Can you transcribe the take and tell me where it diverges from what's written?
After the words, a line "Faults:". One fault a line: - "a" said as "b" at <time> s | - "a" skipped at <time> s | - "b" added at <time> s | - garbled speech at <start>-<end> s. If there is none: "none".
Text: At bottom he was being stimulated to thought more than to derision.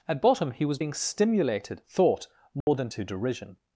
At bottom he was being stimulated thought more than to derision.
Faults:
- "to" skipped at 1.8 s